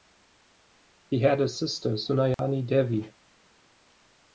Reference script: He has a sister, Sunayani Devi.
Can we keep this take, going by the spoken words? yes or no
no